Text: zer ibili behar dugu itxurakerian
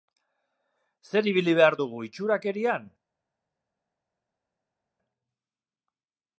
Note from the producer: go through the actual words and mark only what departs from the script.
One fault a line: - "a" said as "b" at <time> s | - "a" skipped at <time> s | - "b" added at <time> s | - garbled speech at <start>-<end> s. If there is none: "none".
none